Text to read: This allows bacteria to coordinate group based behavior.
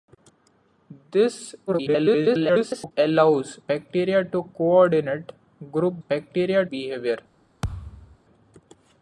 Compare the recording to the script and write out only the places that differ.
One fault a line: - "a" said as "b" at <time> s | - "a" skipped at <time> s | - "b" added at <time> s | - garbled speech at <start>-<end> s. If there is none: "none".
- garbled speech at 1.7-2.9 s
- "based" said as "bacteria" at 6.1 s